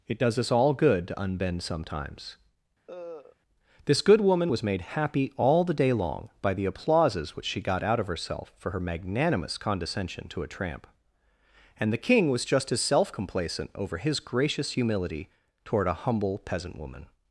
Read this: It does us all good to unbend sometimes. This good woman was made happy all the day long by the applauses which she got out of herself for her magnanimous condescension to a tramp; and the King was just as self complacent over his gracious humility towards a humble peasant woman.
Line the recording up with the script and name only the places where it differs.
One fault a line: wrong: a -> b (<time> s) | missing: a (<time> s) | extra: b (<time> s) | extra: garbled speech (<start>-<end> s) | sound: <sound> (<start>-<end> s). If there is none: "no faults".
sound: cough (2.9-3.4 s)
wrong: towards -> toward (15.6 s)